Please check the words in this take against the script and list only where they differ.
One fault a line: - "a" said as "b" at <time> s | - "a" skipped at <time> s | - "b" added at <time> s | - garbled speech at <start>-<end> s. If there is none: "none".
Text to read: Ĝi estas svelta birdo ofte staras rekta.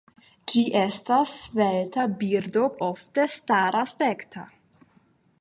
none